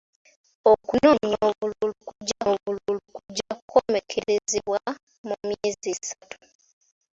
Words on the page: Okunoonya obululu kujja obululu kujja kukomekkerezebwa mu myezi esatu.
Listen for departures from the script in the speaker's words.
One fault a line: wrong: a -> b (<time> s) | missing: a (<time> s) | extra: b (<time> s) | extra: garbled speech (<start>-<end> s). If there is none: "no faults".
no faults